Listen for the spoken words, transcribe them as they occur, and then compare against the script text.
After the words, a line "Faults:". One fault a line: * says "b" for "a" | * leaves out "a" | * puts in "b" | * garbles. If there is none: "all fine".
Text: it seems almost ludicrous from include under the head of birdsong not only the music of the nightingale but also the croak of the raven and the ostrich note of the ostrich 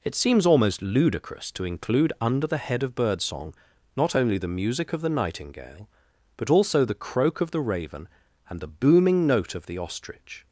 it seems almost ludicrous to include under the head of birdsong not only the music of the nightingale but also the croak of the raven and the booming note of the ostrich
Faults:
* says "to" for "from"
* says "booming" for "ostrich"